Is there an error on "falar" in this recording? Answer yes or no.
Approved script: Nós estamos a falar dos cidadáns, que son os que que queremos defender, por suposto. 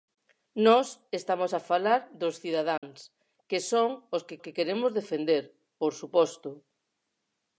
no